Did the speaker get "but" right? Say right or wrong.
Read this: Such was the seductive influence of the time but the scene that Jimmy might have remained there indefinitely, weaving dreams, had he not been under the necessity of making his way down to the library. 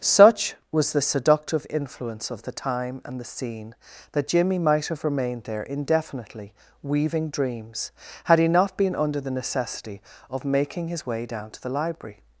wrong